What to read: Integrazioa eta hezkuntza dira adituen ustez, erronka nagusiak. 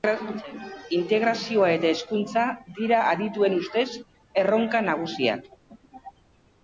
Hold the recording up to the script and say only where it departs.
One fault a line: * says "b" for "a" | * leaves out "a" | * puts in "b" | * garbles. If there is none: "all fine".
all fine